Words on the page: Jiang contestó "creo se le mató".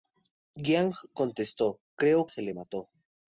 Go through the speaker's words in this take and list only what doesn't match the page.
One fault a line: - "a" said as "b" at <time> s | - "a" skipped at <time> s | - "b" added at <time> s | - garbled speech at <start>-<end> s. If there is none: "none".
none